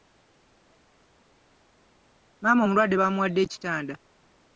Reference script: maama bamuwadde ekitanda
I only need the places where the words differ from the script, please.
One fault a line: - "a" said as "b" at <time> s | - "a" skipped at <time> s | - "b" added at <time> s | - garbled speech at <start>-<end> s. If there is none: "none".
- "omulwadde" added at 2.6 s